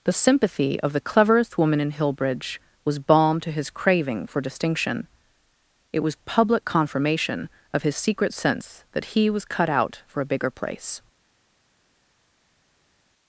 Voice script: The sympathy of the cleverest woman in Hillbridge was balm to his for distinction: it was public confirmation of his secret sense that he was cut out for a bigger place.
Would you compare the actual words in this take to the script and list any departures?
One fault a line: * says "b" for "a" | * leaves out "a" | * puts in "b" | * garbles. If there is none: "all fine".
* puts in "craving"